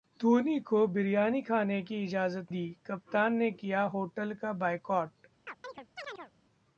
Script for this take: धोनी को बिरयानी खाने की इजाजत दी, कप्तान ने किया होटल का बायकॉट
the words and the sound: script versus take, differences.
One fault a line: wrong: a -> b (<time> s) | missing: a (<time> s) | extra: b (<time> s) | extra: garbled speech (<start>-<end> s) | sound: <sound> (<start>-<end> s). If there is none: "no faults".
sound: chirp (5.5-6.3 s)